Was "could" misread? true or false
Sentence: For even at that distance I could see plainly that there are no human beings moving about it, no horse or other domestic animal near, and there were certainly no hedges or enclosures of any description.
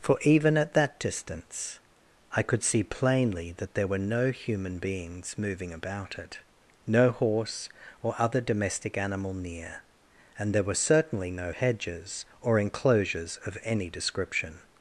false